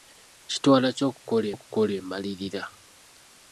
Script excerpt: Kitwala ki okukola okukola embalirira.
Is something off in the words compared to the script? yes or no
no